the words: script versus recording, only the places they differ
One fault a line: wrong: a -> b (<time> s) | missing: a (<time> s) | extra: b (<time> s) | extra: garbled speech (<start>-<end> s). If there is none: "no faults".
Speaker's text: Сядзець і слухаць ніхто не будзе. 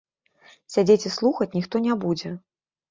no faults